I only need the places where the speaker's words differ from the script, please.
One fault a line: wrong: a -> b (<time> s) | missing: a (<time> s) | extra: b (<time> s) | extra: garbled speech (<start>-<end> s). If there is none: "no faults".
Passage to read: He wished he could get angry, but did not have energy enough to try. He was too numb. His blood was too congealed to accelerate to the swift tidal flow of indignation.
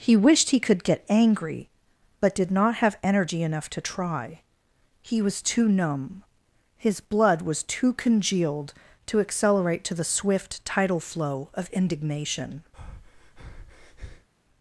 no faults